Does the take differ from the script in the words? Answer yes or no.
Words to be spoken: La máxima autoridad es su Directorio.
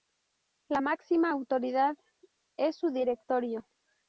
no